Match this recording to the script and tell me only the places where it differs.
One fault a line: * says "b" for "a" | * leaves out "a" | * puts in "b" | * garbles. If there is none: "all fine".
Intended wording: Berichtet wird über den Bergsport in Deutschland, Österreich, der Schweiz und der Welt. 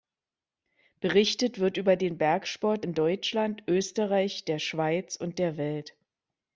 all fine